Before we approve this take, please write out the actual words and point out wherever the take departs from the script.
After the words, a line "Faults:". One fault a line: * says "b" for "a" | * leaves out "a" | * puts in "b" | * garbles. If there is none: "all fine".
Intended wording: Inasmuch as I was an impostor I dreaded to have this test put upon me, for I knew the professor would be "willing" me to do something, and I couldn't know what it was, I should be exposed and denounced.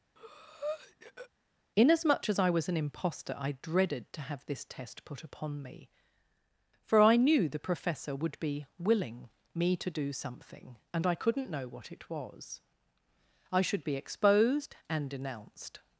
Inasmuch as I was an impostor I dreaded to have this test put upon me, for I knew the professor would be "willing" me to do something, and I couldn't know what it was, I should be exposed and denounced.
Faults:
all fine